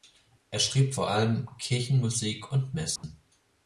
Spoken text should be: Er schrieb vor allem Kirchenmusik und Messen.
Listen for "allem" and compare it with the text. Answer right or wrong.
right